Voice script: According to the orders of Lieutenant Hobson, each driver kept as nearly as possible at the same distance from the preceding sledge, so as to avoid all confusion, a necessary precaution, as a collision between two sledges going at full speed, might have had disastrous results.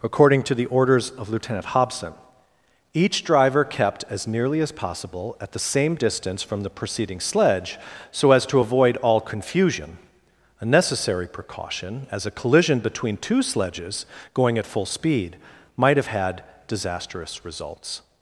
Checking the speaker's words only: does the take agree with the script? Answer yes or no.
yes